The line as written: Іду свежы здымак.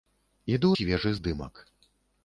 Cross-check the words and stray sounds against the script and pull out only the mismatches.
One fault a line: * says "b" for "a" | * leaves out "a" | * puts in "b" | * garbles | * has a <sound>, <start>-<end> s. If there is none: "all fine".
all fine